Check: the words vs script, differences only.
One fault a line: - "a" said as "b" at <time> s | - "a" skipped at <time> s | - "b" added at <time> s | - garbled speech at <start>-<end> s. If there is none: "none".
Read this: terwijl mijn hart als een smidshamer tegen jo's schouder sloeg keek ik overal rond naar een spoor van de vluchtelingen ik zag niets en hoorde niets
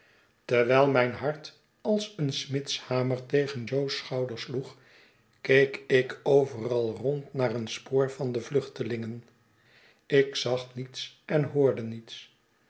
none